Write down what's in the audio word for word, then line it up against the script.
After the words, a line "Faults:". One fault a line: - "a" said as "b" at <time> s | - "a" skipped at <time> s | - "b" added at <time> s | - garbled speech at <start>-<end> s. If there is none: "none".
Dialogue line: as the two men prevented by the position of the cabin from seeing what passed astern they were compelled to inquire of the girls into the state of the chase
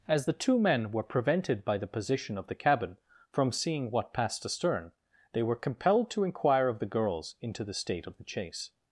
as the two men were prevented by the position of the cabin from seeing what passed astern they were compelled to inquire of the girls into the state of the chase
Faults:
- "were" added at 0.9 s